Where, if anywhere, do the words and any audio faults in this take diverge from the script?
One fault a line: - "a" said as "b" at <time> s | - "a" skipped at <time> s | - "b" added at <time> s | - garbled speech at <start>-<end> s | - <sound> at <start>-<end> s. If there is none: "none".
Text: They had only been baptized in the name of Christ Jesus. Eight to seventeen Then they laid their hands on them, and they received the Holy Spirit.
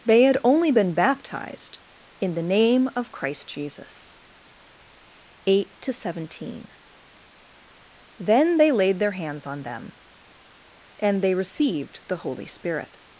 none